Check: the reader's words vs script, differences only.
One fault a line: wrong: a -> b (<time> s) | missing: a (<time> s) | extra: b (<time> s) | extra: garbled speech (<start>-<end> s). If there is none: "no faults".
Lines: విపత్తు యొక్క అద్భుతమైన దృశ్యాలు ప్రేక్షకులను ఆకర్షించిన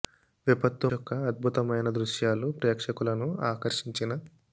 no faults